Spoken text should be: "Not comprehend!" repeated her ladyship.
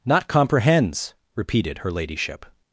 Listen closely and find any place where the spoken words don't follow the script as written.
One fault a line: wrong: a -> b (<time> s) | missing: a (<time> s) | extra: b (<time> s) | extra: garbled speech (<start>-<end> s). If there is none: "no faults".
wrong: comprehend -> comprehends (0.3 s)